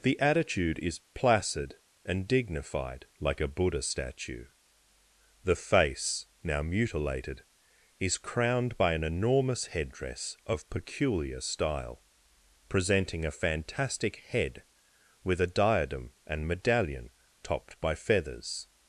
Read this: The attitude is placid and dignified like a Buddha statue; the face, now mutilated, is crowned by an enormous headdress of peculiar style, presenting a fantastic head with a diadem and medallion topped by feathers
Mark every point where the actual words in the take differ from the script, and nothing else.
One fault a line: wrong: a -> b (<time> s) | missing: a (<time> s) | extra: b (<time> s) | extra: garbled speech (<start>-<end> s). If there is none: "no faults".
no faults